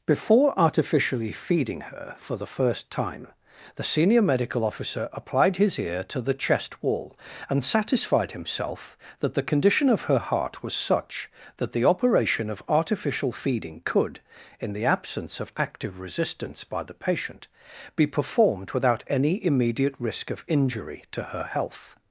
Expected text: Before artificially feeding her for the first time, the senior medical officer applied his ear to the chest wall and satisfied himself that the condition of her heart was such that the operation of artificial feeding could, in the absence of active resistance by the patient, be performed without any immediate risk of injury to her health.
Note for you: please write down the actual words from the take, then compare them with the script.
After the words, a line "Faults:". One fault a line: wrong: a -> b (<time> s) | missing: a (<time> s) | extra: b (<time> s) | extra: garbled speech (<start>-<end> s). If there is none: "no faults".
Before artificially feeding her for the first time, the senior medical officer applied his ear to the chest wall and satisfied himself that the condition of her heart was such that the operation of artificial feeding could, in the absence of active resistance by the patient, be performed without any immediate risk of injury to her health.
Faults:
no faults